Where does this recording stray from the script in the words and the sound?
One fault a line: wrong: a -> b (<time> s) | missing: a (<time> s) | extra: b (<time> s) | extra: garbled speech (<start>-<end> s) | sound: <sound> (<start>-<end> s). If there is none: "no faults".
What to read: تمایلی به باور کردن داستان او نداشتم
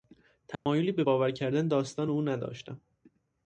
sound: dropout (0.5-0.7 s)